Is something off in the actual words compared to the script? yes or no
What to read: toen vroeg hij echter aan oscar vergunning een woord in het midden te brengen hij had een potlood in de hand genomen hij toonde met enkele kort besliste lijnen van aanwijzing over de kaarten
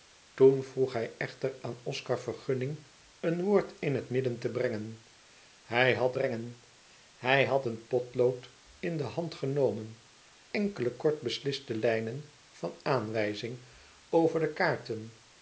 yes